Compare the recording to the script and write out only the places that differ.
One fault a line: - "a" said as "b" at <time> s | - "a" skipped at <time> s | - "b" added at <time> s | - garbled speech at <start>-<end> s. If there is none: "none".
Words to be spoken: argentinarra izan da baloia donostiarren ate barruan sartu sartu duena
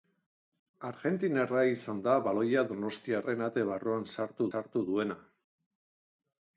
none